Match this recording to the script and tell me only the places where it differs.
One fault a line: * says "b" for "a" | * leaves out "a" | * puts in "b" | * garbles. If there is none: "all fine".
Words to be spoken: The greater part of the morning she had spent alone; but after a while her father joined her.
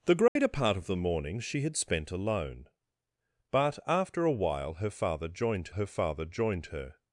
* puts in "father joined her"